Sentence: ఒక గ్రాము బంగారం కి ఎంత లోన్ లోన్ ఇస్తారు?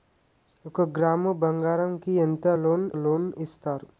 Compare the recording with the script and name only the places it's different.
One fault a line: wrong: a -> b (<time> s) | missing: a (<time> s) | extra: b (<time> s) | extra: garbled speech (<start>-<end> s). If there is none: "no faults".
no faults